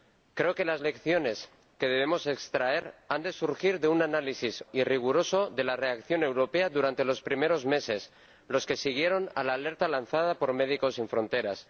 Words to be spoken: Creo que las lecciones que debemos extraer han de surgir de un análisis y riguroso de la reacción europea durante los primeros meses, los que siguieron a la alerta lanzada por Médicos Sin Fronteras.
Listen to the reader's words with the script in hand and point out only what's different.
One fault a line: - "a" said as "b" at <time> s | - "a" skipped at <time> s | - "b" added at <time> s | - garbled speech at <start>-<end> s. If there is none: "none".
none